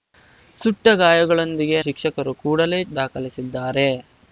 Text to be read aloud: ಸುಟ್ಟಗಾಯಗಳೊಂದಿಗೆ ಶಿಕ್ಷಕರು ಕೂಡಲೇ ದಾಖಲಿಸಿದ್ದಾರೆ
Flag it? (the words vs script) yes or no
no